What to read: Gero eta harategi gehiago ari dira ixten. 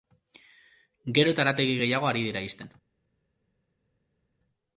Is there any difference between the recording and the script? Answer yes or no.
no